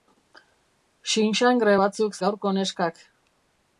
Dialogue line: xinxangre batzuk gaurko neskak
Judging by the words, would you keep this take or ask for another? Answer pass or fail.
pass